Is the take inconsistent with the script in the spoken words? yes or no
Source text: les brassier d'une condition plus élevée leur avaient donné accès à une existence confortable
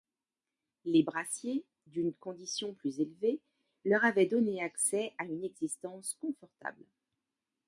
no